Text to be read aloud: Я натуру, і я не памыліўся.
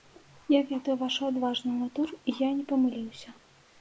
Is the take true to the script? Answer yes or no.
no